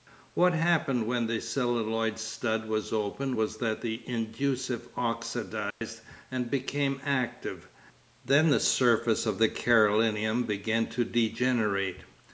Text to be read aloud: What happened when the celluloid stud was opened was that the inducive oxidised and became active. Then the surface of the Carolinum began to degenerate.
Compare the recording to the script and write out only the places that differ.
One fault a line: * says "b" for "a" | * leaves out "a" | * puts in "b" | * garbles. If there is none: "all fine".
all fine